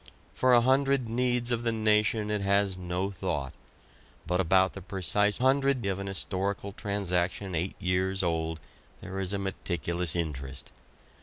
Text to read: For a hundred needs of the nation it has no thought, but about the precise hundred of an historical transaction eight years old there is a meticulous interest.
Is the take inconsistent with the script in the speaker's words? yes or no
no